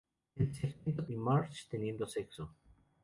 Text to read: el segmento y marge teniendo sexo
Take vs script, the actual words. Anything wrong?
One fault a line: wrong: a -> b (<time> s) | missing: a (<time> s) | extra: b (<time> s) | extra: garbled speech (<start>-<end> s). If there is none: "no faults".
no faults